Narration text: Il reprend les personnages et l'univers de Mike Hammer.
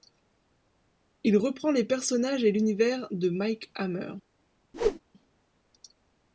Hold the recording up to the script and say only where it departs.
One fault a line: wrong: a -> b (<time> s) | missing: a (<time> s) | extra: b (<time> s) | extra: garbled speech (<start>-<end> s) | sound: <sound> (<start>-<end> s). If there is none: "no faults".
sound: whoosh (4.7-5.0 s)